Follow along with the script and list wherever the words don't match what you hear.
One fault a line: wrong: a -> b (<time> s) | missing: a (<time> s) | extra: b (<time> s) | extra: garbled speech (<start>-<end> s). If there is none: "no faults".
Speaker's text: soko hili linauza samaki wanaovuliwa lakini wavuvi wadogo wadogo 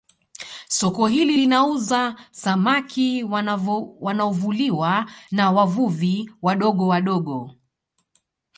wrong: lakini -> na (5.3 s)